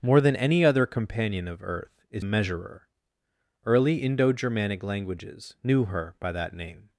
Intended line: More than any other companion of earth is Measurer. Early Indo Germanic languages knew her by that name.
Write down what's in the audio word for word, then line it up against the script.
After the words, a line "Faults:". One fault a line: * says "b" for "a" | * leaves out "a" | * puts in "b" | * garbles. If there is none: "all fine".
More than any other companion of earth is Measurer. Early Indo Germanic languages knew her by that name.
Faults:
all fine